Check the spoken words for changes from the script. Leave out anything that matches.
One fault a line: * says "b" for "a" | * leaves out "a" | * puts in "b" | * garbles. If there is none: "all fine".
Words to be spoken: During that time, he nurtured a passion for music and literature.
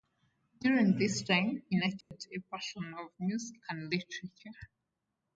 * says "this" for "that"